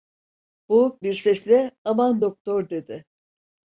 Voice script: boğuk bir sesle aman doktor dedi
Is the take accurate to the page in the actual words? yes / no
yes